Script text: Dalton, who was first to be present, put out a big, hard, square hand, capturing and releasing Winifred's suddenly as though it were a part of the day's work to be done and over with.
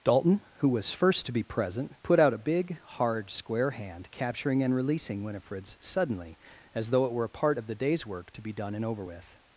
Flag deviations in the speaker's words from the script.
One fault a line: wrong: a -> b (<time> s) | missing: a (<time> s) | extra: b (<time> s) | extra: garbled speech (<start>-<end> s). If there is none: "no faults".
no faults